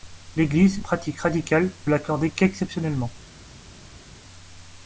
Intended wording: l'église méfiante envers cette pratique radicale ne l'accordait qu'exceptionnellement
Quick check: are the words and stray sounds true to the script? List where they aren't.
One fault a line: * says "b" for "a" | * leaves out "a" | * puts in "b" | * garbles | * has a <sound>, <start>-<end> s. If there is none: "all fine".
* leaves out "méfiante envers cette"
* leaves out "ne"